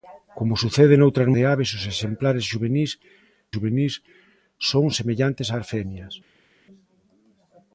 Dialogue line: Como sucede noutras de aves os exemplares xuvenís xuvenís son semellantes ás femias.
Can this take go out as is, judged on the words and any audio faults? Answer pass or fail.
pass